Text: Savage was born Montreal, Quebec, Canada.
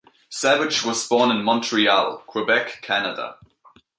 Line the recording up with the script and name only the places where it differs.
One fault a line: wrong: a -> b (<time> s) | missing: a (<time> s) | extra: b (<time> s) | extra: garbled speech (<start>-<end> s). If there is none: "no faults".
extra: in (1.3 s)